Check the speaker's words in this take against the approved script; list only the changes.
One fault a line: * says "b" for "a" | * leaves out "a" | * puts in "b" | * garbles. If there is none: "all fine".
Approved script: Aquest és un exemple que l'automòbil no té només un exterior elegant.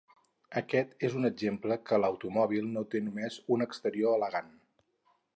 all fine